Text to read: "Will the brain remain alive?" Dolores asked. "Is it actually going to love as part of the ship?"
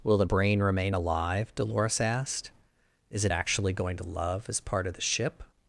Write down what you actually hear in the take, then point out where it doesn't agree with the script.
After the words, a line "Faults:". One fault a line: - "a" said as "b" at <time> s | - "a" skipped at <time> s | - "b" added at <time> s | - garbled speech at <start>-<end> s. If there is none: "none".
"Will the brain remain alive?" Dolores asked. "Is it actually going to love as part of the ship?"
Faults:
none